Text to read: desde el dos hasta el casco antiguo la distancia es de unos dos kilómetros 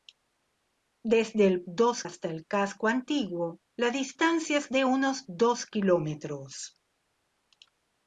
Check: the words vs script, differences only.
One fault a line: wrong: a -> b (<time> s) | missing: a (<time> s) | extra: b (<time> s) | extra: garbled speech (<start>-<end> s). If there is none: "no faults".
no faults